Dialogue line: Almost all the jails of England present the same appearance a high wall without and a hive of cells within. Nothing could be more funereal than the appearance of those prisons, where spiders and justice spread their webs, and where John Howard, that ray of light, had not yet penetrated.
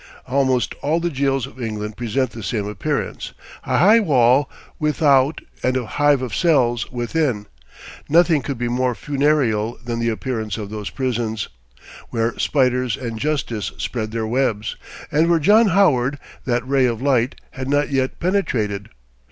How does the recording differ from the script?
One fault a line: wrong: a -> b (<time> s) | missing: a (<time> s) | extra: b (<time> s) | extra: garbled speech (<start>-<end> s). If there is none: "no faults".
no faults